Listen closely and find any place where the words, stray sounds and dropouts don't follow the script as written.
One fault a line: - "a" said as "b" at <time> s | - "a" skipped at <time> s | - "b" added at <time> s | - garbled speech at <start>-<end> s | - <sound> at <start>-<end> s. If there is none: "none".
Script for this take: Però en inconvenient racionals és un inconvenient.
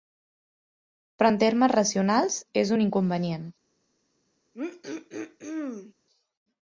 - "inconvenient" said as "termes" at 1.4 s
- throat clearing at 4.5-5.9 s